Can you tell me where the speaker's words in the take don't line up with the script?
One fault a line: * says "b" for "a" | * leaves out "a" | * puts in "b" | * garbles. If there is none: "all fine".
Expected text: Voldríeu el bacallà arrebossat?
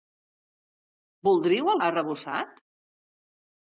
* leaves out "bacallà"